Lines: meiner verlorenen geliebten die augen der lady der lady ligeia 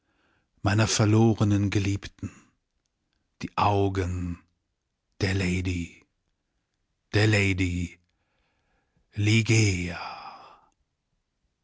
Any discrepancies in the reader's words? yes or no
no